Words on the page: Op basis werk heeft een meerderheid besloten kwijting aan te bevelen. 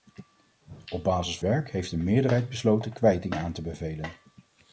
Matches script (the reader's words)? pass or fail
pass